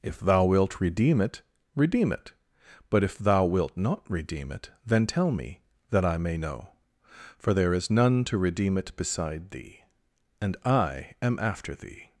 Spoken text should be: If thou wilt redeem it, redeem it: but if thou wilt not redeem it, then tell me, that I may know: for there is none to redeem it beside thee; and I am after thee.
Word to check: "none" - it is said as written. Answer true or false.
true